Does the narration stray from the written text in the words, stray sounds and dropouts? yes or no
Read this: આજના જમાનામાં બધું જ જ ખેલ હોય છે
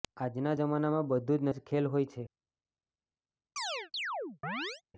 yes